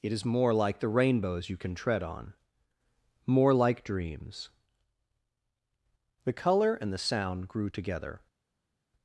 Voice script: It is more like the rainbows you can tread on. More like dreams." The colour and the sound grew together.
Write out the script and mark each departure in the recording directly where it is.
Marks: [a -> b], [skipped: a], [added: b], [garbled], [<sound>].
It is more like the rainbows you can tread on. More like dreams." The colour and the sound grew together.